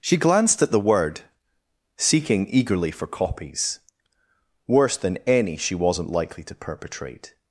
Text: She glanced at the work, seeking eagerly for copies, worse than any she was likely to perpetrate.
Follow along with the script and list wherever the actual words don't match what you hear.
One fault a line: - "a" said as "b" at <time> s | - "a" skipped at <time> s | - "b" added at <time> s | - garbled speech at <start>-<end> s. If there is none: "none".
- "work" said as "word" at 0.8 s
- "was" said as "wasn't" at 5.8 s